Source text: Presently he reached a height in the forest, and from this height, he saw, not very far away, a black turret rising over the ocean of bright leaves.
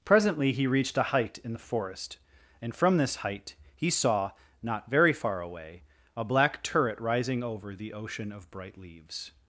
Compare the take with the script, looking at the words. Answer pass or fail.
pass